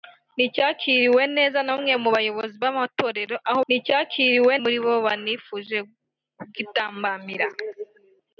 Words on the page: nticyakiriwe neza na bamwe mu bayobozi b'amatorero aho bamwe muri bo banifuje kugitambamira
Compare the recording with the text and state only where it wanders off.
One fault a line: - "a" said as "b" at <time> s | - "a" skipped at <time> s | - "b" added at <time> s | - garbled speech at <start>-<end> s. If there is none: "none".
- "bamwe" said as "nticyakiriwe" at 3.7 s